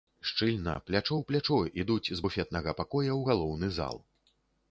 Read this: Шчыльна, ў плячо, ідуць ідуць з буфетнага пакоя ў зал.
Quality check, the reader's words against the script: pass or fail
fail